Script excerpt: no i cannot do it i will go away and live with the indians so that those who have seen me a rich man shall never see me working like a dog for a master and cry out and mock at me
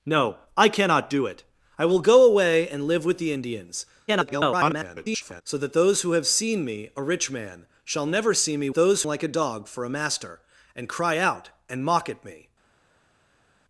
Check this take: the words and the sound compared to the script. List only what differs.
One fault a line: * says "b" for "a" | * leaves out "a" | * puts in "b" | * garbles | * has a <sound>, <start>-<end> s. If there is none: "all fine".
* garbles
* says "those" for "working"